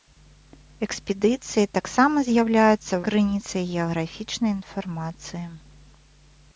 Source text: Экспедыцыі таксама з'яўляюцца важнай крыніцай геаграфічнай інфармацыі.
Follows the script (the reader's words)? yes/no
no